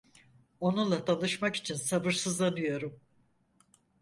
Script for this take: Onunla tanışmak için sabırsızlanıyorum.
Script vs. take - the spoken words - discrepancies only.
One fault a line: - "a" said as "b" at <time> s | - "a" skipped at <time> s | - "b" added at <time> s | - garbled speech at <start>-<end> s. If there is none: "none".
none